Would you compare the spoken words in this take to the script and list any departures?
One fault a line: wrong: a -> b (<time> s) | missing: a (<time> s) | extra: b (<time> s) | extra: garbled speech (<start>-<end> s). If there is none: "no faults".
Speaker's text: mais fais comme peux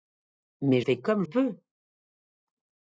no faults